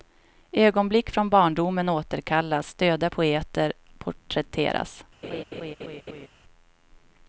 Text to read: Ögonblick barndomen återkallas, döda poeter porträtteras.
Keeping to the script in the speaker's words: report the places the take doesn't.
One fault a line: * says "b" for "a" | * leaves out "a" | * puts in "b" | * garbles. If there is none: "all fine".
* puts in "från"